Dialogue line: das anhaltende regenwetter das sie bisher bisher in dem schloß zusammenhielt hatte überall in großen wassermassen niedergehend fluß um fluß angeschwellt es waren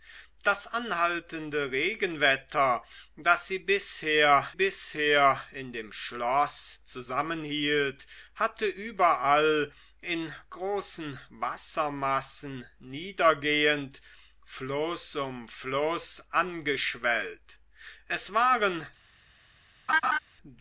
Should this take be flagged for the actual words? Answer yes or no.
no